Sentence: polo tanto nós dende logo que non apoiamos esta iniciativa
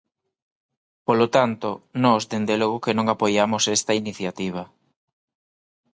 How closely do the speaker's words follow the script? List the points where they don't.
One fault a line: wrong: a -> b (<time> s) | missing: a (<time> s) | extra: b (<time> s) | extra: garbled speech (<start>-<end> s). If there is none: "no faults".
no faults